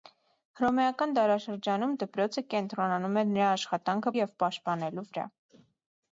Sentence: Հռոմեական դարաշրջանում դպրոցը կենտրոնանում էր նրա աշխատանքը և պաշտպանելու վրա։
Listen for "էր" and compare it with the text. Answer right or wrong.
right